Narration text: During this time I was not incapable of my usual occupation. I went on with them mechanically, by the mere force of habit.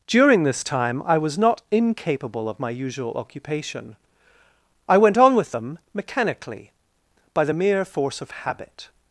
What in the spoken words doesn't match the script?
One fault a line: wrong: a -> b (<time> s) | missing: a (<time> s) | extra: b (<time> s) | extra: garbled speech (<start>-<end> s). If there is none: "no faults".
no faults